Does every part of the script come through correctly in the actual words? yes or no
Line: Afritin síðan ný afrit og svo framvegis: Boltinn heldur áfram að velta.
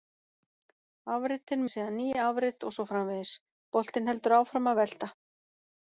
yes